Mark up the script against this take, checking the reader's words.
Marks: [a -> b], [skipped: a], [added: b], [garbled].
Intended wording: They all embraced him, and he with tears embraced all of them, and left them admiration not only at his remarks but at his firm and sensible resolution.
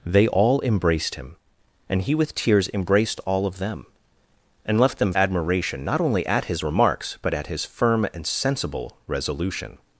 They all embraced him, and he with tears embraced all of them, and left them admiration not only at his remarks but at his firm and sensible resolution.